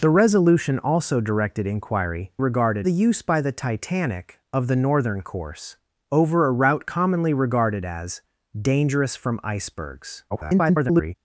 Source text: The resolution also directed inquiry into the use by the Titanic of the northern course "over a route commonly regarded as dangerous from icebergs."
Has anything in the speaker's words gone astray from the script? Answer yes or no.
yes